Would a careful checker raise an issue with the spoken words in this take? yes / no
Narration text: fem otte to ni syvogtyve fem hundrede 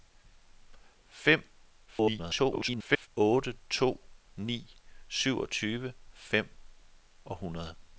yes